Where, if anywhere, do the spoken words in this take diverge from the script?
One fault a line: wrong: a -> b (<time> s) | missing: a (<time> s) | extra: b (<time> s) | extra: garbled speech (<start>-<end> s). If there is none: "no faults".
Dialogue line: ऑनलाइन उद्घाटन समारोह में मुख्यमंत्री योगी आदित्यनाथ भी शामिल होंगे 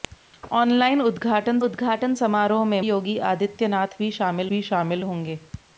extra: उद्घाटन (1.6 s)
missing: मुख्यमंत्री (2.8 s)
extra: भी शामिल (4.5 s)